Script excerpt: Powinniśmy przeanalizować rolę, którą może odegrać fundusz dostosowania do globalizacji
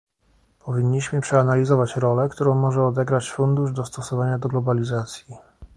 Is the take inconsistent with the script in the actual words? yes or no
no